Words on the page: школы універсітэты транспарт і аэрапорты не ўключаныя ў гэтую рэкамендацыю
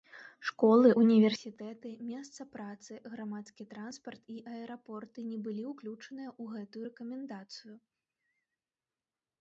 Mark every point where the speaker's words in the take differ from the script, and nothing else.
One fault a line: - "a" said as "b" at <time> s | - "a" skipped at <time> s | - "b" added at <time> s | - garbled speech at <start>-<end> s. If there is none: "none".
- "месца працы грамадскі" added at 2.1 s
- "былі" added at 5.5 s